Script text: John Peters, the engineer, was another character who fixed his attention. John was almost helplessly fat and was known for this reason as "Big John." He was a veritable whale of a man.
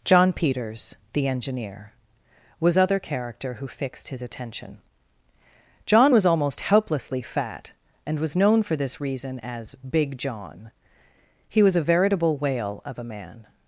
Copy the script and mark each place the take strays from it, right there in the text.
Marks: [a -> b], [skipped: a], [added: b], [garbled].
John Peters, the engineer, was [another -> other] character who fixed his attention. John was almost helplessly fat and was known for this reason as "Big John." He was a veritable whale of a man.